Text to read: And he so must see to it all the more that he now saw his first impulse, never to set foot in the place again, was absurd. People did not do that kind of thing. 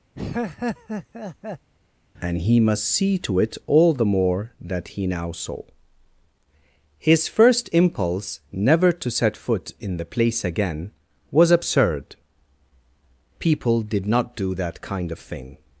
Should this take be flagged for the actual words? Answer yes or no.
yes